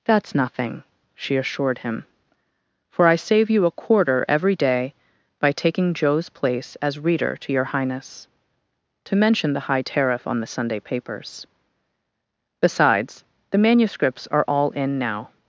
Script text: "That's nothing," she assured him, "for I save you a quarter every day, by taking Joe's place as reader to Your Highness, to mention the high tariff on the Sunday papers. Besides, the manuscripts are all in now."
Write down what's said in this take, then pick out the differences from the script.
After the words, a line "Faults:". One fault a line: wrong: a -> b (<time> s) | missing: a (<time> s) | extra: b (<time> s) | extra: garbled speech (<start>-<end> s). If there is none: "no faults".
"That's nothing," she assured him, "for I save you a quarter every day, by taking Joe's place as reader to Your Highness, to mention the high tariff on the Sunday papers. Besides, the manuscripts are all in now."
Faults:
no faults